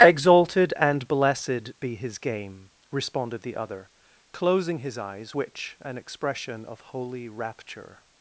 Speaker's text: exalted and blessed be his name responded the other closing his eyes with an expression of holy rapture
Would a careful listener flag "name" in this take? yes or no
yes